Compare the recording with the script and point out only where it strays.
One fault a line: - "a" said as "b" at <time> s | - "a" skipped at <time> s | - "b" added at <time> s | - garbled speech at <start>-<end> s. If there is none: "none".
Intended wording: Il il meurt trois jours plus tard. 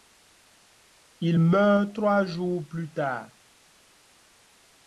- "il" skipped at 1.4 s